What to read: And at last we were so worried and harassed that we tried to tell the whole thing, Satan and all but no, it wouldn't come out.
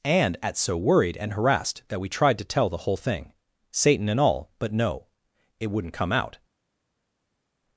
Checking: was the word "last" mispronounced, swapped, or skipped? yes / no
yes